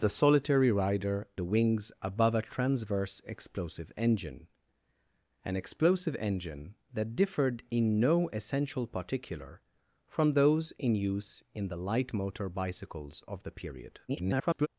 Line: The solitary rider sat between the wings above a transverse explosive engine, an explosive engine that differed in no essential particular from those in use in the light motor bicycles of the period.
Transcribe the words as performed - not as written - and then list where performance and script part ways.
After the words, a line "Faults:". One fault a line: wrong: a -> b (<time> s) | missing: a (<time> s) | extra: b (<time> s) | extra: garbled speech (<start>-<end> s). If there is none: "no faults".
The solitary rider the wings above a transverse explosive engine, an explosive engine that differed in no essential particular from those in use in the light motor bicycles of the period. [garbled]
Faults:
missing: sat between (1.3 s)
extra: garbled speech (14.1-14.7 s)